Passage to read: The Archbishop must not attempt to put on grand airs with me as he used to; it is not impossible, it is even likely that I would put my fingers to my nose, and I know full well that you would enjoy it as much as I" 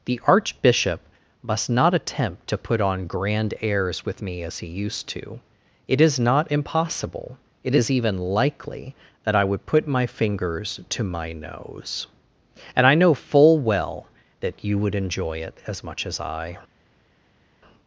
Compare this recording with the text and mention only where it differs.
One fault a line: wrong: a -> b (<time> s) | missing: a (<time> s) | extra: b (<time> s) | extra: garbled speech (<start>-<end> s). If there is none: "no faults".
no faults